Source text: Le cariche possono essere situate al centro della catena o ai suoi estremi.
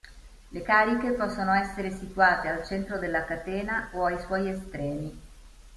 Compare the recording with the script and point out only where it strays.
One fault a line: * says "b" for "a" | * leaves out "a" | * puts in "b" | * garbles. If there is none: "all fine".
all fine